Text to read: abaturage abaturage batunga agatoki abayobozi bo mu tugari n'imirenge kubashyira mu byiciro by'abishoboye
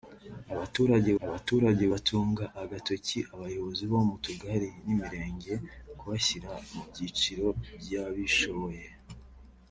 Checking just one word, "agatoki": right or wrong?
right